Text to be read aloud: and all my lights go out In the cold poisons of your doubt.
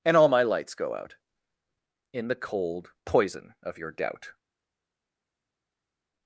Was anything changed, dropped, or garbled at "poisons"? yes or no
yes